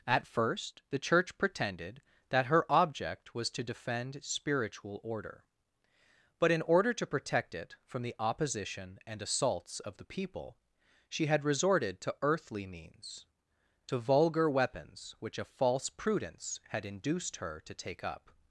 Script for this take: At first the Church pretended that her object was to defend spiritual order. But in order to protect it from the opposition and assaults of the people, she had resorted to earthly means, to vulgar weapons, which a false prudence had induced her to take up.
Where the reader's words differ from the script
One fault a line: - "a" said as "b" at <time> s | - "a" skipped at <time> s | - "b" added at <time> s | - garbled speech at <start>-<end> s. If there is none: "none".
none